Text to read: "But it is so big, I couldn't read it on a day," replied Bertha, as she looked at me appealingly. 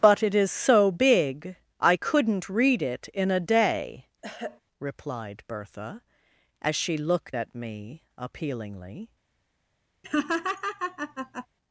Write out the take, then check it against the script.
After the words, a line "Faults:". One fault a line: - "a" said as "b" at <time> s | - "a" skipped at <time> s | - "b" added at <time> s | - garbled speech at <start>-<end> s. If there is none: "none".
"But it is so big, I couldn't read it in a day," replied Bertha, as she looked at me appealingly.
Faults:
- "on" said as "in" at 3.1 s